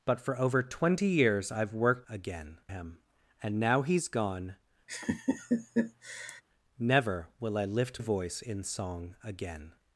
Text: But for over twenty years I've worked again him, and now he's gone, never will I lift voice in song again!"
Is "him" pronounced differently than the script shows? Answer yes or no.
no